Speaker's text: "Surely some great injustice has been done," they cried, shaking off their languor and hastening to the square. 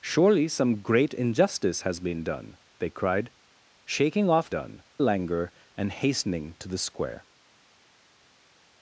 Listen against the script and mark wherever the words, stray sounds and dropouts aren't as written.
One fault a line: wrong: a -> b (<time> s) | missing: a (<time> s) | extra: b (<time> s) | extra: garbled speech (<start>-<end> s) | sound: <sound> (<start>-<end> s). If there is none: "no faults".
wrong: their -> done (4.5 s)